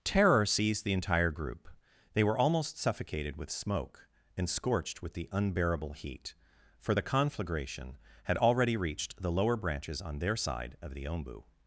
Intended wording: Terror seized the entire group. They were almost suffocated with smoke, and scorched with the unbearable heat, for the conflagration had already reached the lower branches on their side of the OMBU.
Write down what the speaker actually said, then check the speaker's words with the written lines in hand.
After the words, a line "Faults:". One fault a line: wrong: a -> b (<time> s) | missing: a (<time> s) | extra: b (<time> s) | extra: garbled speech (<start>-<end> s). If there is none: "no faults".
Terror seized the entire group. They were almost suffocated with smoke, and scorched with the unbearable heat, for the conflagration had already reached the lower branches on their side of the OMBU.
Faults:
no faults